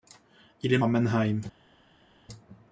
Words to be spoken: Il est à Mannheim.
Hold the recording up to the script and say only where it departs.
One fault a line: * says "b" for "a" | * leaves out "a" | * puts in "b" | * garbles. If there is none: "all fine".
all fine